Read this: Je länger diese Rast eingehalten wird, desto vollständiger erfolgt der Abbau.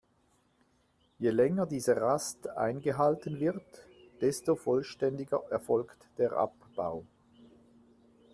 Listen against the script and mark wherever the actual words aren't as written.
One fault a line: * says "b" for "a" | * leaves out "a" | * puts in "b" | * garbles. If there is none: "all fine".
all fine